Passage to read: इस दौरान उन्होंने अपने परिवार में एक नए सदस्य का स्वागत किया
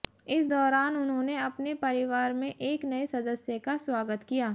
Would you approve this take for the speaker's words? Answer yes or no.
yes